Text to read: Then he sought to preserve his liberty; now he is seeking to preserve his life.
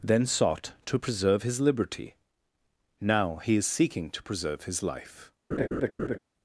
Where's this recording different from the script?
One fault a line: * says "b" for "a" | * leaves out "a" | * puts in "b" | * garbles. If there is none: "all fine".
* leaves out "he"